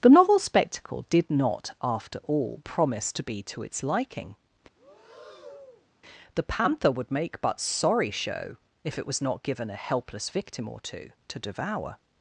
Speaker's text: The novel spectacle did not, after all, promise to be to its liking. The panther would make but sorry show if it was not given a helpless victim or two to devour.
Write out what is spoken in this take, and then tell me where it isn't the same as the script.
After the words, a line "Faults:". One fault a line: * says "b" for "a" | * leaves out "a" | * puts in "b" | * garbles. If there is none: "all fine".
The novel spectacle did not, after all, promise to be to its liking. The panther would make but sorry show if it was not given a helpless victim or two to devour.
Faults:
all fine